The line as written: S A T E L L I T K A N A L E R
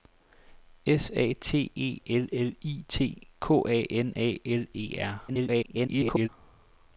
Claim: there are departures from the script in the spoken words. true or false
true